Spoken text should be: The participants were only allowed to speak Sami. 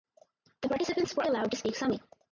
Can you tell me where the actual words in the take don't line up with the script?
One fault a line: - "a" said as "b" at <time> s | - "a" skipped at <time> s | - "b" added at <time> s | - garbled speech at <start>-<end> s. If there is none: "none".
- "only" skipped at 1.2 s